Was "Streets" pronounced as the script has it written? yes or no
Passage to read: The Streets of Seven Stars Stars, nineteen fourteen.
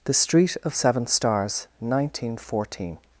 no